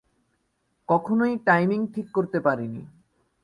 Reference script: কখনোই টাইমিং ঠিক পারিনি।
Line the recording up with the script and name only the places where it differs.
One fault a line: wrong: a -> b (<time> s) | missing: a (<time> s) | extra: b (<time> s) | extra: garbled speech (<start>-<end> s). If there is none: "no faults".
extra: করতে (2.1 s)